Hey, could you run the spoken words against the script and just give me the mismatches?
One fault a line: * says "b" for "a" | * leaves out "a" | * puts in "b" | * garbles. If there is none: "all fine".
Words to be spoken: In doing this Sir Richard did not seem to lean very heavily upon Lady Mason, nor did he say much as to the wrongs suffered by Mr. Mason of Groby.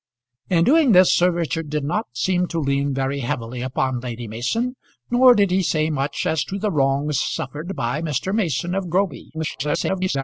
* garbles